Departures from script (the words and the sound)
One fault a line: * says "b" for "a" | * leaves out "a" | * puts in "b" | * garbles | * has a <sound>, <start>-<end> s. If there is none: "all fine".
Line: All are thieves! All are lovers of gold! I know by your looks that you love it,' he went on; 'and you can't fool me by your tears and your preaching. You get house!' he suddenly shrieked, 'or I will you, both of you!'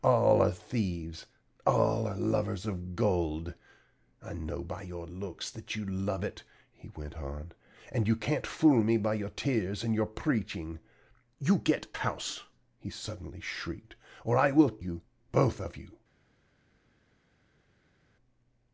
all fine